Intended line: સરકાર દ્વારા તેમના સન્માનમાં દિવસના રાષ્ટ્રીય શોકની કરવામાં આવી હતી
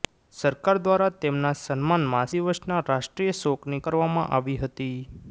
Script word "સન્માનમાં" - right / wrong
right